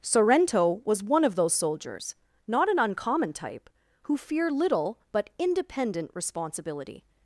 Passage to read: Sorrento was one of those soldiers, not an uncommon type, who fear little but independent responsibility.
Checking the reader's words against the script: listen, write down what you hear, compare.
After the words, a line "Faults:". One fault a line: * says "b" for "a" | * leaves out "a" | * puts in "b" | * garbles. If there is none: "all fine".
Sorrento was one of those soldiers, not an uncommon type, who fear little but independent responsibility.
Faults:
all fine